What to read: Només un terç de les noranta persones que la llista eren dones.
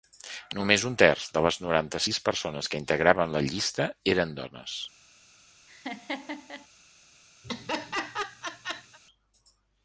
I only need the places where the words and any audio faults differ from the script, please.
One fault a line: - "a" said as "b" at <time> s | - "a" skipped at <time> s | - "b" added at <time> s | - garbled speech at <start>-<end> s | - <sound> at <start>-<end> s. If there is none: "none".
- "sis" added at 2.0 s
- "integraven" added at 2.8 s
- laugh at 5.7-6.7 s
- laugh at 7.4-9.0 s